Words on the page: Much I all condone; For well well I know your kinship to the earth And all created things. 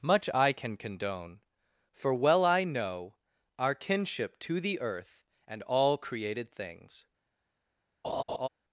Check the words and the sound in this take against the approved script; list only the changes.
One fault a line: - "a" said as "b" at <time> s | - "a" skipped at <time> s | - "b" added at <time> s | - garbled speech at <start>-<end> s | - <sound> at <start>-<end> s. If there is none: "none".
- "all" said as "can" at 0.5 s
- "well" skipped at 2.4 s
- "your" said as "our" at 3.6 s
- laugh at 8.0-8.5 s